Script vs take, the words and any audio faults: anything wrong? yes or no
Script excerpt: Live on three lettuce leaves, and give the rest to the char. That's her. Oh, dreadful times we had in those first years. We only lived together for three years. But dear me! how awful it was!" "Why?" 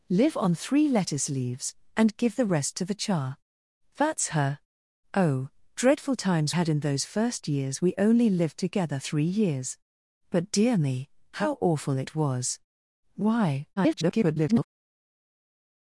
yes